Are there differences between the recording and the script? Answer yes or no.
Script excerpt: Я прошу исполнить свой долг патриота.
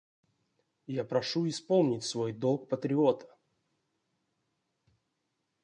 no